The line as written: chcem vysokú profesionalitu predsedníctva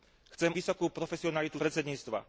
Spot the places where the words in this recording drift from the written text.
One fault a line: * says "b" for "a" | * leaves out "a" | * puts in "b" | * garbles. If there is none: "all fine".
all fine